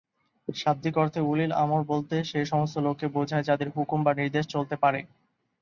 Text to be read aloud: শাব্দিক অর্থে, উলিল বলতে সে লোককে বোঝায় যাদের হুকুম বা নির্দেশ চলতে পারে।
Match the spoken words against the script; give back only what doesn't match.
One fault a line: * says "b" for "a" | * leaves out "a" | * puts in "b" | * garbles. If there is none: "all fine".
* puts in "আমর"
* puts in "সমস্ত"